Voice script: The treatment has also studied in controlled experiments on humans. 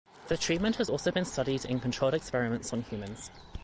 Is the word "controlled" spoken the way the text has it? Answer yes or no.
yes